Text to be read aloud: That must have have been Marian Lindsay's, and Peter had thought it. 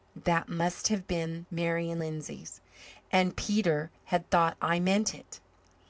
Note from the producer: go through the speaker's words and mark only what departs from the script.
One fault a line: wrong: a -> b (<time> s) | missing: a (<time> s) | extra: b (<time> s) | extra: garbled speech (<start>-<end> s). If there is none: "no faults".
missing: have (1.1 s)
extra: I meant (4.6 s)